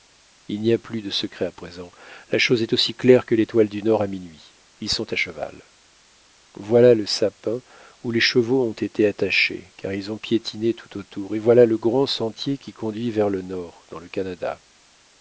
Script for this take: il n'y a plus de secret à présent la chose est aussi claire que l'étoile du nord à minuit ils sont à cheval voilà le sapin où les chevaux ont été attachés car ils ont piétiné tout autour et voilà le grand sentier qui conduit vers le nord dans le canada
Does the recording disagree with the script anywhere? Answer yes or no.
no